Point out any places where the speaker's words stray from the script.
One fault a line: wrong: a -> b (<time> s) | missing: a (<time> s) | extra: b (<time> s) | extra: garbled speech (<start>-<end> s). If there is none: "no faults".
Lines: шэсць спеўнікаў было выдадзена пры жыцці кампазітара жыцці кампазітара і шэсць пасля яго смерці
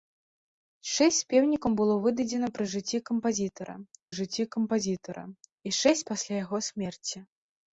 no faults